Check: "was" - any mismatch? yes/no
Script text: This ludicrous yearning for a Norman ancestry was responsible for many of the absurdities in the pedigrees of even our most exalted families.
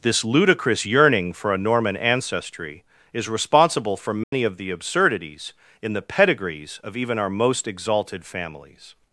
yes